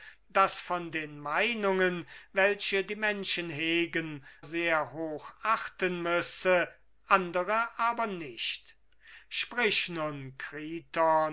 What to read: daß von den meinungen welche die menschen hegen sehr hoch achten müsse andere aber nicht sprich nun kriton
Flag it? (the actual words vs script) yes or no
no